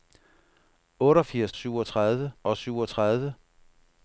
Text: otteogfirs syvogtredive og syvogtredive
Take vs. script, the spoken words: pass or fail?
pass